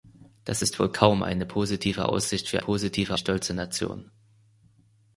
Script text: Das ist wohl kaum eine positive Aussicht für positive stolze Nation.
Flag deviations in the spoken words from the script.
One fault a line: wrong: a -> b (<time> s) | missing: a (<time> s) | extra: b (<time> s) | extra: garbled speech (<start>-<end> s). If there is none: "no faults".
no faults